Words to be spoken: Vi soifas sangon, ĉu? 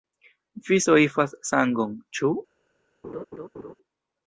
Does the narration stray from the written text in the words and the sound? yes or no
yes